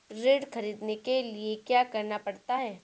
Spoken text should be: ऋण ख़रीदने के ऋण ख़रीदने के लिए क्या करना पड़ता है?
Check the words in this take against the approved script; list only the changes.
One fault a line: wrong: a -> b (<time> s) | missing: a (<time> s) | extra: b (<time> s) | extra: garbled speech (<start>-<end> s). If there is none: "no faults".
missing: ऋण ख़रीदने के (1.2 s)